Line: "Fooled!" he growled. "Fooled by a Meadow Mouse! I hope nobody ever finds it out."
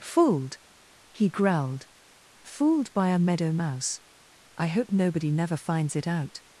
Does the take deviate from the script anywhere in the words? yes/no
yes